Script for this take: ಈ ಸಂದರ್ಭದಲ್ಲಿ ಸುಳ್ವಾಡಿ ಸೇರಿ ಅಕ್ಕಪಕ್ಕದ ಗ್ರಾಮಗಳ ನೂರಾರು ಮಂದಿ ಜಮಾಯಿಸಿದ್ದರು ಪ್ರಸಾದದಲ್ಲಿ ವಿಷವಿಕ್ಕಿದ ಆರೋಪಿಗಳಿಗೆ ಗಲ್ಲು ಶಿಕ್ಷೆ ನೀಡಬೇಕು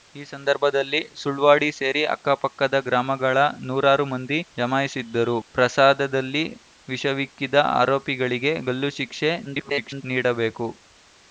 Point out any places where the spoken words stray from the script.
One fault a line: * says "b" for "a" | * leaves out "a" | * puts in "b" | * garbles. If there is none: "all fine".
* garbles